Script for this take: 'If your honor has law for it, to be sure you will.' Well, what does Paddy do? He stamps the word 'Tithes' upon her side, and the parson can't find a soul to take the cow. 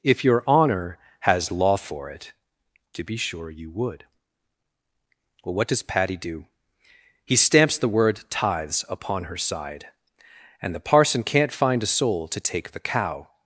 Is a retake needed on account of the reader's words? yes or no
yes